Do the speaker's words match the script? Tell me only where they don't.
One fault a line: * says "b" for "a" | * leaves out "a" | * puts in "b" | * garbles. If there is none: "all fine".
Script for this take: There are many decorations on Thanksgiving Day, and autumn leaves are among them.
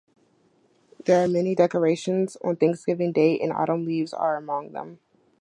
all fine